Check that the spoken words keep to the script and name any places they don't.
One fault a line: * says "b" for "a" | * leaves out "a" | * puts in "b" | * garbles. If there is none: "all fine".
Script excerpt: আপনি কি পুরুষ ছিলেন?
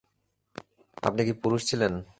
all fine